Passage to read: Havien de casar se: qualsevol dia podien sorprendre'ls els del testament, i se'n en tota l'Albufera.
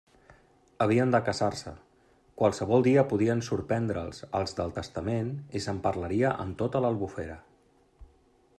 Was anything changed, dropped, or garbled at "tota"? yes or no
no